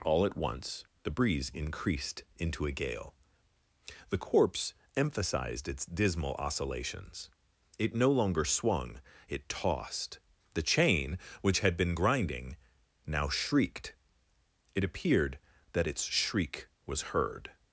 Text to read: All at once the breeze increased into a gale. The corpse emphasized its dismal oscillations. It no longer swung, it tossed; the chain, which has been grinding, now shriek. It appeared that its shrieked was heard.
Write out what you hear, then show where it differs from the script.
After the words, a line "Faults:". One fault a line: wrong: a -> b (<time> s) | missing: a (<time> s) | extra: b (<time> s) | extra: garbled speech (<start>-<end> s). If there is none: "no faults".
All at once the breeze increased into a gale. The corpse emphasized its dismal oscillations. It no longer swung, it tossed; the chain, which had been grinding, now shrieked. It appeared that its shriek was heard.
Faults:
wrong: has -> had (11.6 s)
wrong: shriek -> shrieked (13.3 s)
wrong: shrieked -> shriek (16.0 s)